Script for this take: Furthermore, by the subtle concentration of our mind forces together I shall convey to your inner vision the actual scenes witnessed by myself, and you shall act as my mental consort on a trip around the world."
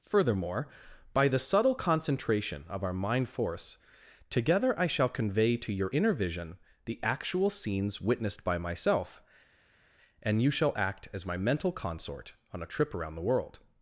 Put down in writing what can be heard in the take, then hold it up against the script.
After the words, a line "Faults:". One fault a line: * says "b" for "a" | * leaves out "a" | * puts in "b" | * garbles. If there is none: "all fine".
Furthermore, by the subtle concentration of our mind force together I shall convey to your inner vision the actual scenes witnessed by myself, and you shall act as my mental consort on a trip around the world."
Faults:
* says "force" for "forces"